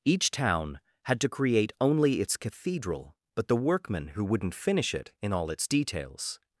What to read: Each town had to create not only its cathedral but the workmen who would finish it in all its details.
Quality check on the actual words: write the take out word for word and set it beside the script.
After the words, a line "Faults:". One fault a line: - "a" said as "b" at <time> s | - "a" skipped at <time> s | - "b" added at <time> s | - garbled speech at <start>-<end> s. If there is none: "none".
Each town had to create only its cathedral but the workmen who wouldn't finish it in all its details.
Faults:
- "not" skipped at 1.7 s
- "would" said as "wouldn't" at 4.2 s